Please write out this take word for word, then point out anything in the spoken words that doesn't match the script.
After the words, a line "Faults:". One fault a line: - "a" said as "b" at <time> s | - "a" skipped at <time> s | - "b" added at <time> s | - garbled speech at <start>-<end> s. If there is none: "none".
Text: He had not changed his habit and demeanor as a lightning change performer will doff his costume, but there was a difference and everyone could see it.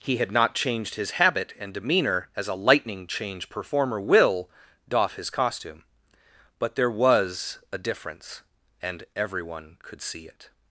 He had not changed his habit and demeanor as a lightning change performer will doff his costume, but there was a difference and everyone could see it.
Faults:
none